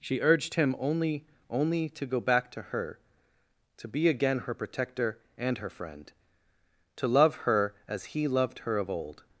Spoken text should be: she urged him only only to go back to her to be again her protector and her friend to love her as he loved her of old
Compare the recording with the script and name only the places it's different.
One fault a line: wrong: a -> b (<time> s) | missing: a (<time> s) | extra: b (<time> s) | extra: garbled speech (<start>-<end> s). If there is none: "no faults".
no faults